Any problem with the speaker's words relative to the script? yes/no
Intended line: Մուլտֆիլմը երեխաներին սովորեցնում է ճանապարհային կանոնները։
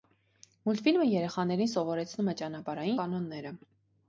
no